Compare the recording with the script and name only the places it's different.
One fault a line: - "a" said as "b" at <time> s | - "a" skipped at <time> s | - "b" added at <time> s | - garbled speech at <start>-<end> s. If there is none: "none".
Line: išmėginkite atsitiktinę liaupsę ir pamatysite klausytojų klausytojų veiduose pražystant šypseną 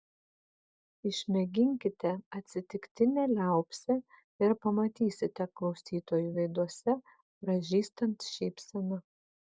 - "klausytojų" skipped at 6.3 s